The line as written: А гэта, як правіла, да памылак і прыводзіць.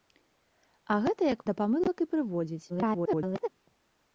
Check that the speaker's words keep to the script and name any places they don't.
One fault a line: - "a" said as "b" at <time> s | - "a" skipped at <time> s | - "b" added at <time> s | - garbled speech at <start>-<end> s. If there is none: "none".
- "правіла" skipped at 1.4 s
- garbled speech at 2.7-3.5 s